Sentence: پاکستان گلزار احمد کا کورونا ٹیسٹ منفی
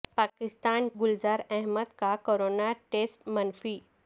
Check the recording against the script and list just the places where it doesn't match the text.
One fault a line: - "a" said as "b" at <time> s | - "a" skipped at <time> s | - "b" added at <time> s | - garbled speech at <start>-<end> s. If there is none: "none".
none